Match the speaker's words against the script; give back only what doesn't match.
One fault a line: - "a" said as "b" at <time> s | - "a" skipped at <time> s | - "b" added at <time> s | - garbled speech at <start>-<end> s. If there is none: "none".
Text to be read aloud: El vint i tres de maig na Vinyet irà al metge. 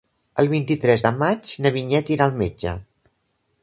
none